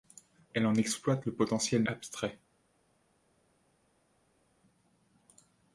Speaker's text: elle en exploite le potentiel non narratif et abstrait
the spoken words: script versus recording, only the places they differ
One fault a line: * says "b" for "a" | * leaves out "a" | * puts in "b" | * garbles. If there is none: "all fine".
* leaves out "non narratif et"